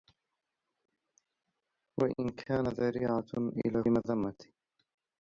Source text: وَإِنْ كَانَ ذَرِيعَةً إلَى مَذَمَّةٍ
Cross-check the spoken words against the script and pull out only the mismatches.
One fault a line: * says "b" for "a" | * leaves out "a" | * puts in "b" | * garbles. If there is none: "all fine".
all fine